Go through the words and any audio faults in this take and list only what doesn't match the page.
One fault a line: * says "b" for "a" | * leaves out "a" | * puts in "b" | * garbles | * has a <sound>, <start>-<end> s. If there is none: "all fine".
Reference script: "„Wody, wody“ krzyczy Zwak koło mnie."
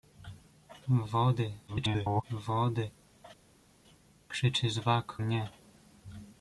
* garbles
* leaves out "koło"